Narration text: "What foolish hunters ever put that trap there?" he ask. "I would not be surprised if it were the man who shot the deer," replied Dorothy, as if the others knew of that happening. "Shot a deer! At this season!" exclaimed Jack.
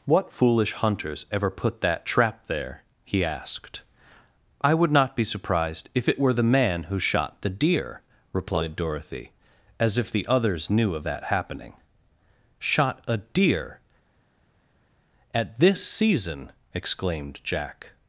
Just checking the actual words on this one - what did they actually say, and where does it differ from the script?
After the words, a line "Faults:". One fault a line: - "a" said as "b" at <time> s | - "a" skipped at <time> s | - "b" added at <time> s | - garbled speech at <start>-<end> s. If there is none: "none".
"What foolish hunters ever put that trap there?" he asked. "I would not be surprised if it were the man who shot the deer," replied Dorothy, as if the others knew of that happening. "Shot a deer! At this season!" exclaimed Jack.
Faults:
- "ask" said as "asked" at 3.2 s